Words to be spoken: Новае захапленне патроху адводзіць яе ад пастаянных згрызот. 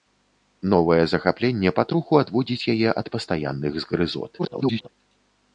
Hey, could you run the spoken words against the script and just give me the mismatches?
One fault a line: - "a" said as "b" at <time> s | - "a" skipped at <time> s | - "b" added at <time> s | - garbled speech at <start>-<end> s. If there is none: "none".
- garbled speech at 4.4-4.9 s